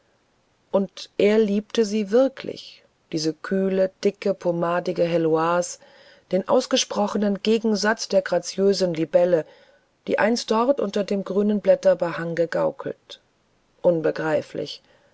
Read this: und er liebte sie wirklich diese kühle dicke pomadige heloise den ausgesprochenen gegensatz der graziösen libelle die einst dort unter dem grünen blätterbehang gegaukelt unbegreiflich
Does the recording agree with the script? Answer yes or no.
yes